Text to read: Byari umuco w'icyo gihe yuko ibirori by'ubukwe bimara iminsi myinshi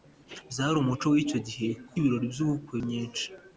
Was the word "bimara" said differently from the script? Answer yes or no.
yes